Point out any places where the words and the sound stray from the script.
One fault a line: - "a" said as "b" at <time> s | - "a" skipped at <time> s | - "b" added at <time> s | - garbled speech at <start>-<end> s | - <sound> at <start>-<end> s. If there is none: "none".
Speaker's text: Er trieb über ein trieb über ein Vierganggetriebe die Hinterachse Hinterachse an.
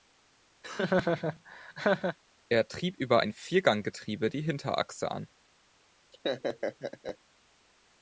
- laugh at 0.6-2.2 s
- "trieb über ein" skipped at 3.3 s
- "Hinterachse" skipped at 5.1 s
- laugh at 6.1-7.2 s